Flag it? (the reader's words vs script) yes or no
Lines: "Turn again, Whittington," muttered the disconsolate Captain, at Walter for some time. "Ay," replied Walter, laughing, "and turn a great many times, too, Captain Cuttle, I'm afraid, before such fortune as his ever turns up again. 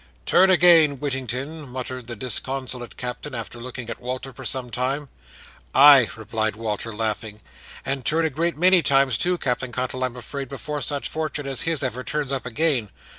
yes